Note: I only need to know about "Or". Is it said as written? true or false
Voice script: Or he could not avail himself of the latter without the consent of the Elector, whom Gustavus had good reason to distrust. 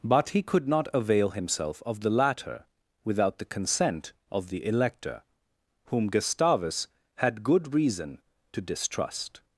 false